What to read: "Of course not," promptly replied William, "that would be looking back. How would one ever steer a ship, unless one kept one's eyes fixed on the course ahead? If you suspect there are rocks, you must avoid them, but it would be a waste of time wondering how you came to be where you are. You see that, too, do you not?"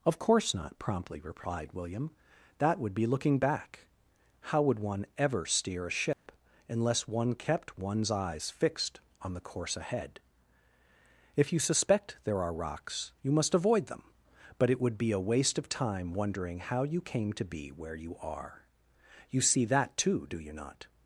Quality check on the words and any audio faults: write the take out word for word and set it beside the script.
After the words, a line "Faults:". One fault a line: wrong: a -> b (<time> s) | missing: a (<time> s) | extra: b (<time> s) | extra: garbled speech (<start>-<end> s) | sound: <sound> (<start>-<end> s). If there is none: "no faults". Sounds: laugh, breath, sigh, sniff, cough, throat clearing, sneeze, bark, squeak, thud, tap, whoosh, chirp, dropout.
"Of course not," promptly replied William, "that would be looking back. How would one ever steer a ship, unless one kept one's eyes fixed on the course ahead? If you suspect there are rocks, you must avoid them, but it would be a waste of time wondering how you came to be where you are. You see that, too, do you not?"
Faults:
sound: dropout (6.1-6.3 s)